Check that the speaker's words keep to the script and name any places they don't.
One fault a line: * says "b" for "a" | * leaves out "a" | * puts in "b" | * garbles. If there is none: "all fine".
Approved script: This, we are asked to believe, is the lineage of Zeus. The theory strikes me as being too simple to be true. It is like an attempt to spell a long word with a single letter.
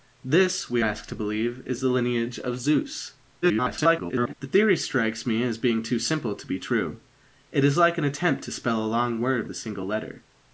* leaves out "are"
* garbles
* leaves out "with"